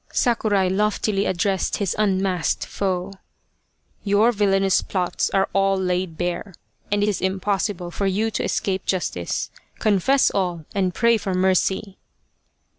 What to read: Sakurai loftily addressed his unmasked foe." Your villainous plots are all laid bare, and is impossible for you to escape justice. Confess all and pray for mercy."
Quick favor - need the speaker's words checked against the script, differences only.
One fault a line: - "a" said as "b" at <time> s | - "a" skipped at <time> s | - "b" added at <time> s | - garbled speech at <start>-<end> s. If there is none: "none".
none